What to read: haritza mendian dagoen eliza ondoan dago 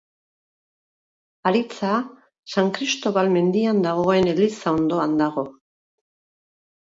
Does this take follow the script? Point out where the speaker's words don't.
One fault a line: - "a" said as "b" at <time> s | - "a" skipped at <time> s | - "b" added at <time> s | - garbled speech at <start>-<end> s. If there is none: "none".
- "san kristobal" added at 2.5 s